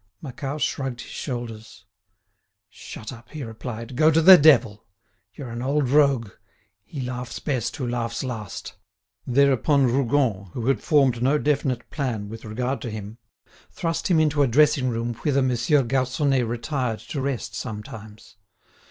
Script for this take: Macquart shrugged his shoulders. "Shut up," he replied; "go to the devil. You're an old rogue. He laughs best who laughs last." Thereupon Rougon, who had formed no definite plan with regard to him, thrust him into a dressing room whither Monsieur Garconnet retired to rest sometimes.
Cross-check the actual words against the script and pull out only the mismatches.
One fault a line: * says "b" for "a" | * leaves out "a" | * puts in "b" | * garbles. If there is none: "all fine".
all fine